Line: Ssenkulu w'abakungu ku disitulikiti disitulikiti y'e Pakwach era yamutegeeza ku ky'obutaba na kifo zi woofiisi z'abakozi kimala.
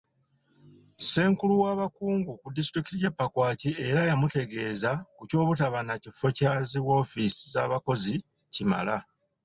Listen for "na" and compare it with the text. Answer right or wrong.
right